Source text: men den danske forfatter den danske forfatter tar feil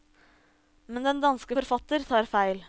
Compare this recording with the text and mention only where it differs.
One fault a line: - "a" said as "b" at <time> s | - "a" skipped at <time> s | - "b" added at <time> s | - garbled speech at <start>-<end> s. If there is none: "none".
- "den danske forfatter" skipped at 2.0 s